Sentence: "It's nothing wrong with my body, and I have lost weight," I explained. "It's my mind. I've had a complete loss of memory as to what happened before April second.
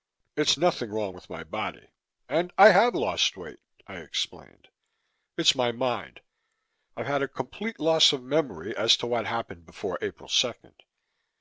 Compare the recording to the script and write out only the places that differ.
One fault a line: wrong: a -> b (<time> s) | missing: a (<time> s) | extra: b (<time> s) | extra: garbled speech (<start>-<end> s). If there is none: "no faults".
no faults